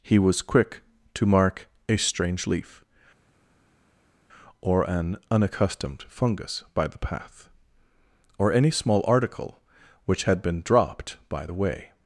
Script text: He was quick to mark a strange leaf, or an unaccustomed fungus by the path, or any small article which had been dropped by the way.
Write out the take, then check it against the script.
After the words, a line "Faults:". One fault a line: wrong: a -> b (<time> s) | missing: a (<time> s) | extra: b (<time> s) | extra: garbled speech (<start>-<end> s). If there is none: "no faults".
He was quick to mark a strange leaf, or an unaccustomed fungus by the path, or any small article which had been dropped by the way.
Faults:
no faults